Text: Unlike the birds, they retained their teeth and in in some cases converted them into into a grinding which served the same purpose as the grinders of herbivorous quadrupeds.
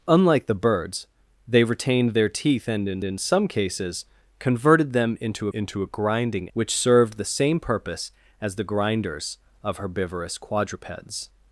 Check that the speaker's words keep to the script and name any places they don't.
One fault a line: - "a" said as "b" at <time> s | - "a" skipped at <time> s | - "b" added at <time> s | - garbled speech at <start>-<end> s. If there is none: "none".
none